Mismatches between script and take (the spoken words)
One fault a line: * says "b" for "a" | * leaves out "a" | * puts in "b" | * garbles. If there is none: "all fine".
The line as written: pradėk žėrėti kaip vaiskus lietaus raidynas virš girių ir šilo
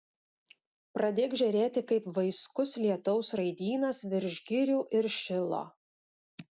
all fine